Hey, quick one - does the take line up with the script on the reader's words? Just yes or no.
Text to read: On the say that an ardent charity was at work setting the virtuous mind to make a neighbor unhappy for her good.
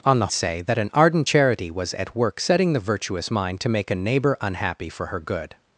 yes